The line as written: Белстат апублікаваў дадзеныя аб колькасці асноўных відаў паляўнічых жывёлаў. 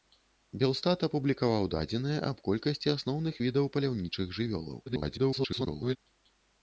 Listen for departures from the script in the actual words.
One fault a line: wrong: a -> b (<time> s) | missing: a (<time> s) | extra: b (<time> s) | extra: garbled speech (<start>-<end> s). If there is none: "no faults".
extra: garbled speech (4.9-6.0 s)